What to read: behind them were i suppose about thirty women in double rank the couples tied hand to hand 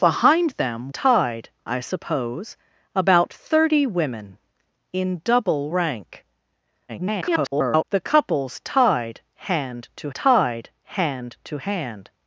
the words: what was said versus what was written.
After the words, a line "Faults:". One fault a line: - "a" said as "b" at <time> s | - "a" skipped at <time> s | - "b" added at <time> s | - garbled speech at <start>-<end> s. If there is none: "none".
behind them tied i suppose about thirty women in double rank [garbled] the couples tied hand to tied hand to hand
Faults:
- "were" said as "tied" at 0.9 s
- garbled speech at 6.9-7.8 s
- "tied hand to" added at 10.1 s